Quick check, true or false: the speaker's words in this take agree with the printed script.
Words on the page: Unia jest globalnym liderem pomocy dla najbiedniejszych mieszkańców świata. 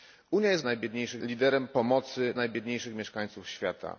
false